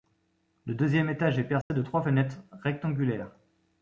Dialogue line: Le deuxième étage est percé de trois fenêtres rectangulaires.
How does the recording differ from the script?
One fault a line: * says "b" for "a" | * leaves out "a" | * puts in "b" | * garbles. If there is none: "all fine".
all fine